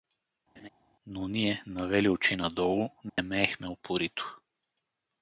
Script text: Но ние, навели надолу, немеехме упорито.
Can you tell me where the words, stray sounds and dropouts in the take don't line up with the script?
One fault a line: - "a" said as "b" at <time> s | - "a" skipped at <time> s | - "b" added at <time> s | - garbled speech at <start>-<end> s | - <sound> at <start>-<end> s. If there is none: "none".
- laugh at 0.6-0.7 s
- "очи" added at 2.1 s
- dropout at 3.1-3.2 s